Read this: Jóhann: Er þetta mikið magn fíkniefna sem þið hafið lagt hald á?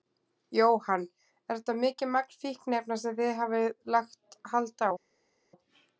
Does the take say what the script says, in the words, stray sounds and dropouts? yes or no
yes